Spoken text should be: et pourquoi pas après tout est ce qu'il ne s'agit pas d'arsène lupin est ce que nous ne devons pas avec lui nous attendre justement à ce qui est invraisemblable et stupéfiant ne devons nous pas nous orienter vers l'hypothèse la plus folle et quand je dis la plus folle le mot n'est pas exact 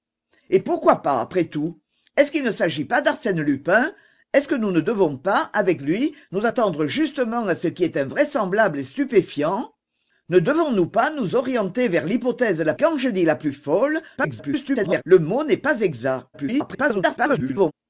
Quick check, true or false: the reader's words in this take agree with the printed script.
false